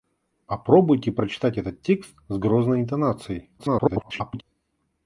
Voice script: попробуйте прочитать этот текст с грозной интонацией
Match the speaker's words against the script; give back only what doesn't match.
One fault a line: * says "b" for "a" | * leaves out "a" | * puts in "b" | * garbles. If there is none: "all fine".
* garbles